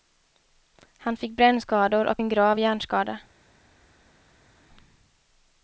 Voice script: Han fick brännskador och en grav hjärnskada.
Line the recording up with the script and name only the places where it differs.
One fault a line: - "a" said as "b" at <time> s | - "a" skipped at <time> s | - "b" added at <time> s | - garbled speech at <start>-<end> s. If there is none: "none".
none